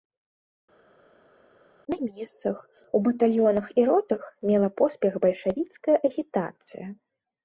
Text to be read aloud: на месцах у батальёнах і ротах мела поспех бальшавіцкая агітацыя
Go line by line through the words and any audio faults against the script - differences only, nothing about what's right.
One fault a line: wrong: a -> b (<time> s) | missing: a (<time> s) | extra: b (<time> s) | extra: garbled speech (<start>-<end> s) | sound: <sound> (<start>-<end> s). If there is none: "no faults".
no faults